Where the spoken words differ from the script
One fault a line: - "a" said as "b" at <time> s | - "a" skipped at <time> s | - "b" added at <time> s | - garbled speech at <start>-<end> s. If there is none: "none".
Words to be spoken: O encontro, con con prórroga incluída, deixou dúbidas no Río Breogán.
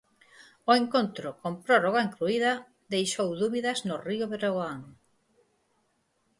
- "con" skipped at 1.5 s